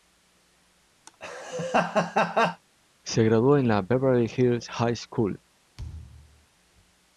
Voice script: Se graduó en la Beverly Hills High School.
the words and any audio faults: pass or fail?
fail